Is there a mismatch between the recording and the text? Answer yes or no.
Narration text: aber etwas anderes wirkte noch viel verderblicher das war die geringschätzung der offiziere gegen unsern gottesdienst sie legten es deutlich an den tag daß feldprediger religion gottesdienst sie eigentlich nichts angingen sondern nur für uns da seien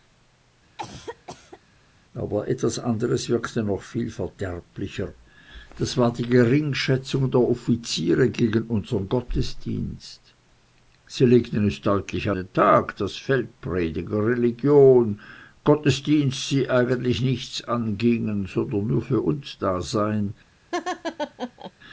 yes